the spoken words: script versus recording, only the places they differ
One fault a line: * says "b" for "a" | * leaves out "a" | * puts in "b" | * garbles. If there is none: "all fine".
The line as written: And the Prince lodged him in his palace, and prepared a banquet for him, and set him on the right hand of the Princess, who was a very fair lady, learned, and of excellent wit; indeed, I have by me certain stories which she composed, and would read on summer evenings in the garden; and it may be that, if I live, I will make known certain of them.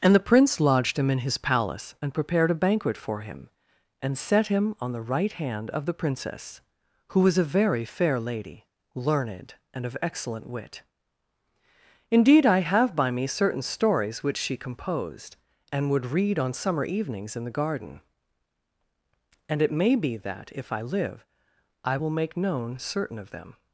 all fine